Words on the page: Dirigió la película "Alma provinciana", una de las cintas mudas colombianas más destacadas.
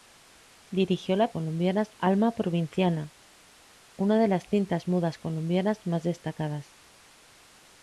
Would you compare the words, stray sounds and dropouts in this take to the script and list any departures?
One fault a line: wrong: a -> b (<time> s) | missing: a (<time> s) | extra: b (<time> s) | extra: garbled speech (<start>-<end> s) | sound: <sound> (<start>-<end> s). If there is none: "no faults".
wrong: película -> colombianas (1.3 s)